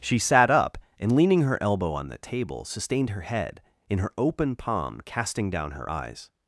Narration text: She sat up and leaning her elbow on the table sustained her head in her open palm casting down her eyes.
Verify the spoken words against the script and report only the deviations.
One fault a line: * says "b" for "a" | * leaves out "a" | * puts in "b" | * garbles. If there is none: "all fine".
all fine